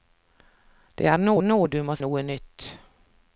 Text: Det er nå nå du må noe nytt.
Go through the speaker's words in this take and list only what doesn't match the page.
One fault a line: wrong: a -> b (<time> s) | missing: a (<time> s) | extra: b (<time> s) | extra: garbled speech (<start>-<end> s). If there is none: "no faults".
no faults